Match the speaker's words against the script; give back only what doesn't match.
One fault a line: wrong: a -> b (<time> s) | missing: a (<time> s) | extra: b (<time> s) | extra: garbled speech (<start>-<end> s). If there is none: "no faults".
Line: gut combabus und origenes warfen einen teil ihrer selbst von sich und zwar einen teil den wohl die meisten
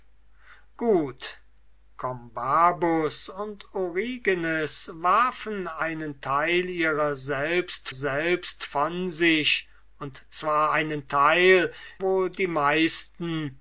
extra: selbst (7.9 s)
missing: den (11.7 s)